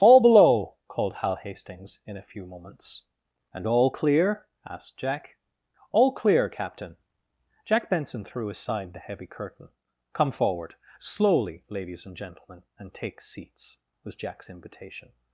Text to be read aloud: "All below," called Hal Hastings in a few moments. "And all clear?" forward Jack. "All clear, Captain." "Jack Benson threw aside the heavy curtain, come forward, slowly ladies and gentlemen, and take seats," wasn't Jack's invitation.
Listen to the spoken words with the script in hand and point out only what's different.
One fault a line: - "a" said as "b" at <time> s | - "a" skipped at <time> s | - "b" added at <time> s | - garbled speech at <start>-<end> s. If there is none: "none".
- "forward" said as "asked" at 4.6 s
- "wasn't" said as "was" at 14.0 s